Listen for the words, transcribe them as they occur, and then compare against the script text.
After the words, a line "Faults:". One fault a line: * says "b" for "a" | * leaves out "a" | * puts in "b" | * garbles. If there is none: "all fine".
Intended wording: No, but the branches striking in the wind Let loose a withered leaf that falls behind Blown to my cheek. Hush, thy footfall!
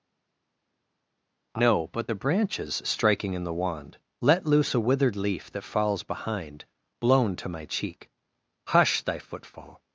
No, but the branches striking in the wand Let loose a withered leaf that falls behind Blown to my cheek. Hush, thy footfall!
Faults:
* says "wand" for "wind"